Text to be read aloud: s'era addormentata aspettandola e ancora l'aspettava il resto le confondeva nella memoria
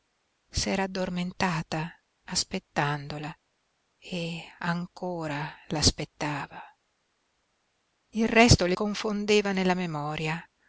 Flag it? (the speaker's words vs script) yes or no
no